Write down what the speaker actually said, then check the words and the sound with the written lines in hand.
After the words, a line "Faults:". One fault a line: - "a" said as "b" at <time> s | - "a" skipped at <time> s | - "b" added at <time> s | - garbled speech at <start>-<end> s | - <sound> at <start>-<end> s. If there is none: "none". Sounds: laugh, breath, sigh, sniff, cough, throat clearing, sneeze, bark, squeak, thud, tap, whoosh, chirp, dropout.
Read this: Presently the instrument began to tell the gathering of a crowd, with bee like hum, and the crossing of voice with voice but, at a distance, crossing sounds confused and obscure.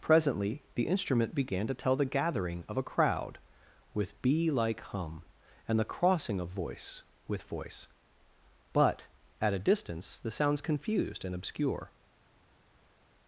Presently the instrument began to tell the gathering of a crowd, with bee like hum, and the crossing of voice with voice but, at a distance, the sounds confused and obscure.
Faults:
- "crossing" said as "the" at 10.2 s